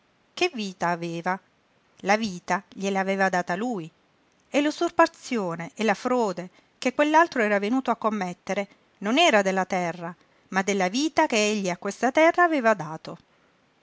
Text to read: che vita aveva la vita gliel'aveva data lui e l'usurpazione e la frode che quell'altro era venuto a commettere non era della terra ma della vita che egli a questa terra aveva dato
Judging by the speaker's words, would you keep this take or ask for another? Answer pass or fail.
pass